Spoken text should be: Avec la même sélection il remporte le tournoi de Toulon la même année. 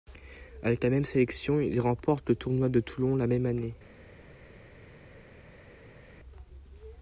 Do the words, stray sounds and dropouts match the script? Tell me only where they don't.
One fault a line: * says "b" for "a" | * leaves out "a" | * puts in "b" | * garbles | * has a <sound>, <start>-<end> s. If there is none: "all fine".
all fine